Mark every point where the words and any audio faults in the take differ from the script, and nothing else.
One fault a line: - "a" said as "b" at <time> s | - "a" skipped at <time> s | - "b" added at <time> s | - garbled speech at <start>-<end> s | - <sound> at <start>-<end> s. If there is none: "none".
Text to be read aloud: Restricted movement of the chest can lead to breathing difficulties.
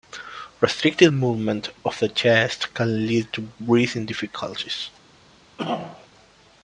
- throat clearing at 5.6-6.1 s